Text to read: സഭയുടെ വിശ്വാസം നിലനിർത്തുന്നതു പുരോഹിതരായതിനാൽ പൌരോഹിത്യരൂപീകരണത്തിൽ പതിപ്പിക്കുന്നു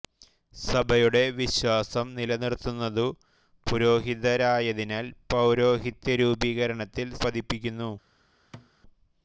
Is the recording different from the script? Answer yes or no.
no